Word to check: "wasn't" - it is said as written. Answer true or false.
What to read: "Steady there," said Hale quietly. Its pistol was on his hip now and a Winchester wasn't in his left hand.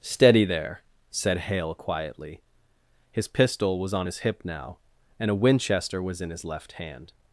false